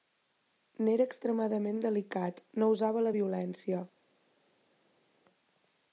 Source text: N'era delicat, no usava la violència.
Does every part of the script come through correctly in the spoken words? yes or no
no